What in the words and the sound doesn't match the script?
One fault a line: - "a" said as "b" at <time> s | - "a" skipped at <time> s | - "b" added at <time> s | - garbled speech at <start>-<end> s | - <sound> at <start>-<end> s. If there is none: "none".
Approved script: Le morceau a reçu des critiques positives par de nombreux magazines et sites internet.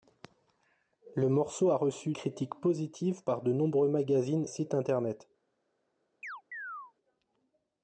- "des" skipped at 2.1 s
- "et" skipped at 4.5 s
- chirp at 6.2-6.9 s